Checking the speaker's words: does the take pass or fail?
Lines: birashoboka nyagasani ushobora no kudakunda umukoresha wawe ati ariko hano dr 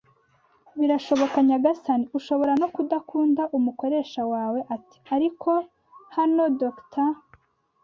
pass